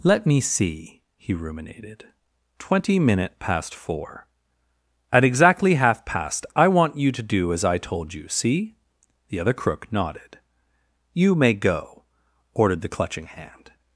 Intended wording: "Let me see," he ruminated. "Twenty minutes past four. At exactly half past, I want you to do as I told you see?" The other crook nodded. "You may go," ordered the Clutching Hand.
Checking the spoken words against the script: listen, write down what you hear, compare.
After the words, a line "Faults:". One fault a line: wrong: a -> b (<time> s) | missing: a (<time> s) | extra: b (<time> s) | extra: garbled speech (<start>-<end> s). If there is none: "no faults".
"Let me see," he ruminated. "Twenty minute past four. At exactly half past, I want you to do as I told you see?" The other crook nodded. "You may go," ordered the Clutching Hand.
Faults:
wrong: minutes -> minute (3.0 s)